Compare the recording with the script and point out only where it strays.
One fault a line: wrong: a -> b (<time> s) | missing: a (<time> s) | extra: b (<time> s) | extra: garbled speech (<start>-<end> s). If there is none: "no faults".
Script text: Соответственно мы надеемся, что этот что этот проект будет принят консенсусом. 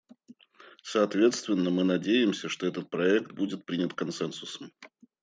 missing: что этот (2.9 s)